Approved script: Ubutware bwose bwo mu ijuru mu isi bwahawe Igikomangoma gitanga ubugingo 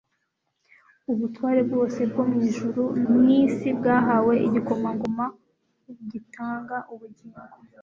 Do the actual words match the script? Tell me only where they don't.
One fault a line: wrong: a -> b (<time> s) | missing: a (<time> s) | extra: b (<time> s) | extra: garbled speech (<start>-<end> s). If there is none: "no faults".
no faults